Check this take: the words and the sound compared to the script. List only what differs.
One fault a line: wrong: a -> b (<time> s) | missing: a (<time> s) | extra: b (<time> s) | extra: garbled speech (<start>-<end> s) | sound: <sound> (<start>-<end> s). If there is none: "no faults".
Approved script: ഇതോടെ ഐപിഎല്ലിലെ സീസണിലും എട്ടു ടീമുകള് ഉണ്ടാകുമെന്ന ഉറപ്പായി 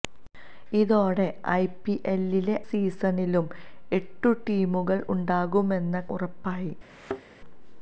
sound: thud (6.9-7.2 s)